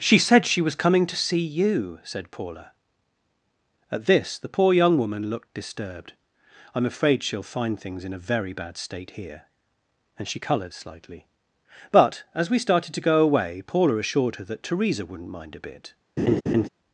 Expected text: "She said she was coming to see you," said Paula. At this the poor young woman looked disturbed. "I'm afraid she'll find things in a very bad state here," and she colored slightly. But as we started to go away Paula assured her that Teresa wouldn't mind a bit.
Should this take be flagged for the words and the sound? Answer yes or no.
yes